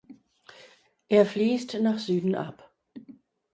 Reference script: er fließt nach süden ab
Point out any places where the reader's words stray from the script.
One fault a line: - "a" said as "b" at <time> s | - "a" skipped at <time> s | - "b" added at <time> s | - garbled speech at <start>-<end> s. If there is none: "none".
none